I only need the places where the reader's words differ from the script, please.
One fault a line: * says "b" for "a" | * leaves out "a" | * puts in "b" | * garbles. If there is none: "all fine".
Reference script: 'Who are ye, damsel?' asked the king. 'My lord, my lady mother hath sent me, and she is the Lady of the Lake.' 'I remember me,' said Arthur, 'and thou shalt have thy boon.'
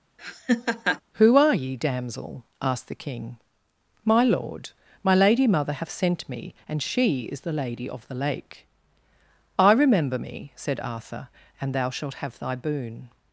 all fine